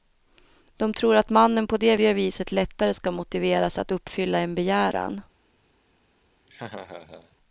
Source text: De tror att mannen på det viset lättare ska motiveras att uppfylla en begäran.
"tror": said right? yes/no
yes